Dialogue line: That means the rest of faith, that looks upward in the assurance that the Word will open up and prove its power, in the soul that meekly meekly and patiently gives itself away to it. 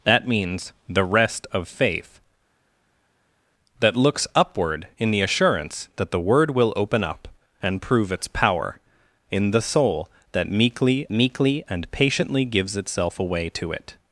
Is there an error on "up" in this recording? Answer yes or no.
no